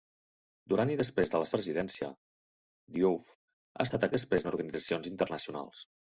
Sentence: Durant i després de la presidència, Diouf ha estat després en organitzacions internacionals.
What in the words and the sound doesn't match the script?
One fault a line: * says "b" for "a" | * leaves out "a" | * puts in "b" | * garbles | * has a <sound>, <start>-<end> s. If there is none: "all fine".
all fine